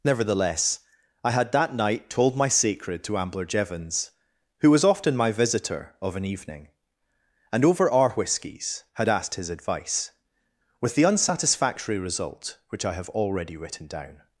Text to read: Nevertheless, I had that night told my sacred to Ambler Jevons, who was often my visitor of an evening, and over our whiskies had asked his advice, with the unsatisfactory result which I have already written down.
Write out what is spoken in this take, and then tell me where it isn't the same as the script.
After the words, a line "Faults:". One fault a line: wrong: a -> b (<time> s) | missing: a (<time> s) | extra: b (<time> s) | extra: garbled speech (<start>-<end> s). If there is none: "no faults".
Nevertheless, I had that night told my sacred to Ambler Jevons, who was often my visitor of an evening, and over our whiskies had asked his advice, with the unsatisfactory result which I have already written down.
Faults:
no faults